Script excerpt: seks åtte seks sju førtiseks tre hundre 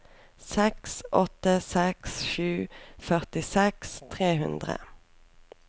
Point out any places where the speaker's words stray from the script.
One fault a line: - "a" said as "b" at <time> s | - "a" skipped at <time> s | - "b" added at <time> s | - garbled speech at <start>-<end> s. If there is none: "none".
none